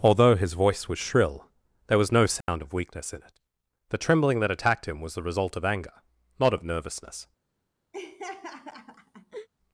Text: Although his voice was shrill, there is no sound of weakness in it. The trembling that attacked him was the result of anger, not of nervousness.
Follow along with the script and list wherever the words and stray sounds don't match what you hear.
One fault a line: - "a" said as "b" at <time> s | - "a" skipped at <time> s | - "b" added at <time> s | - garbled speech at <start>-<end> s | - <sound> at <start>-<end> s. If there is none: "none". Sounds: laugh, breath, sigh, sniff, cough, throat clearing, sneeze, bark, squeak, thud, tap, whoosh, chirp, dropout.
- "is" said as "was" at 2.0 s
- dropout at 2.4-2.5 s
- laugh at 7.9-9.5 s